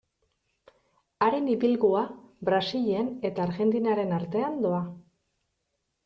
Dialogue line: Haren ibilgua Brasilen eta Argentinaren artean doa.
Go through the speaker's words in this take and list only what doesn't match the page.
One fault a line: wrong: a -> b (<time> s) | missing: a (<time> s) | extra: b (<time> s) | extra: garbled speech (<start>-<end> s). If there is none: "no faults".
no faults